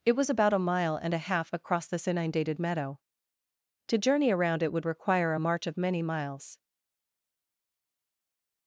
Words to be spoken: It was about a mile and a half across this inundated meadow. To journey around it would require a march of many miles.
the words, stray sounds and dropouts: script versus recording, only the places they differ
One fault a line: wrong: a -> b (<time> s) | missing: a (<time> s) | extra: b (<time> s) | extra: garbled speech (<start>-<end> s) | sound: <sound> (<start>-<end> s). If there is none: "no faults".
no faults